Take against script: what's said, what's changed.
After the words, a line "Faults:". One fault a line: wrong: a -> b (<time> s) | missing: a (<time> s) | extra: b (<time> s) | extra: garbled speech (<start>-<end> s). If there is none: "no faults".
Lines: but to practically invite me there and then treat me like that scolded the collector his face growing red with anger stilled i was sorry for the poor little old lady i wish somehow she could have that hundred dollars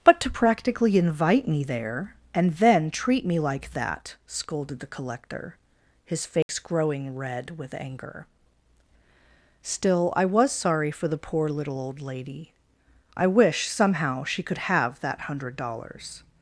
but to practically invite me there and then treat me like that scolded the collector his face growing red with anger still i was sorry for the poor little old lady i wish somehow she could have that hundred dollars
Faults:
wrong: stilled -> still (9.6 s)